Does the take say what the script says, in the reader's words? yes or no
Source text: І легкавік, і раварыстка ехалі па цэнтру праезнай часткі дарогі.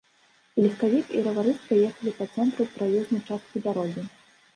yes